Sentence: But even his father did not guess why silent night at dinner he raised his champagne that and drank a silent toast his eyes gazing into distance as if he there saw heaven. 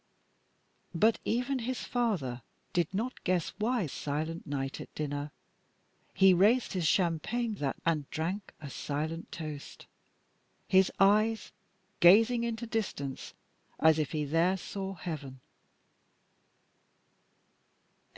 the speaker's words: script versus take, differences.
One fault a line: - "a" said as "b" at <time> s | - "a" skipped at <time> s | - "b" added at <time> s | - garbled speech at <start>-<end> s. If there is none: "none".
none